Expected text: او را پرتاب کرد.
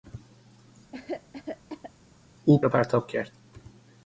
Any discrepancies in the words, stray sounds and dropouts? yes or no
yes